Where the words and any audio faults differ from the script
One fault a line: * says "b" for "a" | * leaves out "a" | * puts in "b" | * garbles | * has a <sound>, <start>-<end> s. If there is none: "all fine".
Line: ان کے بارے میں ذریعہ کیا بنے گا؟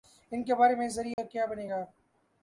* has a dropout, 1.1-1.2 s